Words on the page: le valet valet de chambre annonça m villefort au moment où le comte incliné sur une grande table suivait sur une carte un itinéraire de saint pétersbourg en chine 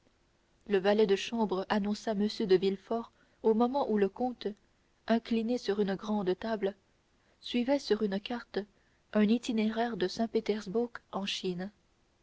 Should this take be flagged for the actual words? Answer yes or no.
yes